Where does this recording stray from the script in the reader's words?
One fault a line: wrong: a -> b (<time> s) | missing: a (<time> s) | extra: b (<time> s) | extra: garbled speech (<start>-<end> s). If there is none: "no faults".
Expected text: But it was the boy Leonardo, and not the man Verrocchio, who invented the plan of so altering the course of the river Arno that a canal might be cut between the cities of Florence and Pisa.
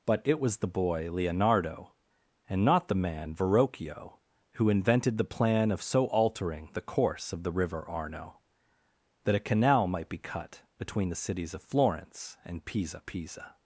extra: Pisa (13.1 s)